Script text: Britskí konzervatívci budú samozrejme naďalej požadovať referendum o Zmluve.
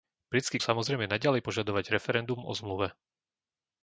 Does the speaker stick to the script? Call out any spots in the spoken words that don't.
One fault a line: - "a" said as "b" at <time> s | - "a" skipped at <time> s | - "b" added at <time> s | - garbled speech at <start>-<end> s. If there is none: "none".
- "konzervatívci budú" skipped at 0.6 s